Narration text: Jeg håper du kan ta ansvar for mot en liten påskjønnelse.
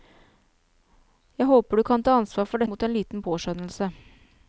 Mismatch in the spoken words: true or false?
false